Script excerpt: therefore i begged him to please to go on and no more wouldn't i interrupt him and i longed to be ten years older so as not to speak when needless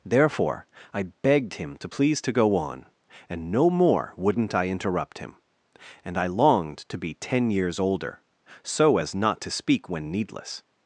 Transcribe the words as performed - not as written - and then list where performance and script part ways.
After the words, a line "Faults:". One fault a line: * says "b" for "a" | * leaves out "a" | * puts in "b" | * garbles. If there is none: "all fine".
therefore i begged him to please to go on and no more wouldn't i interrupt him and i longed to be ten years older so as not to speak when needless
Faults:
all fine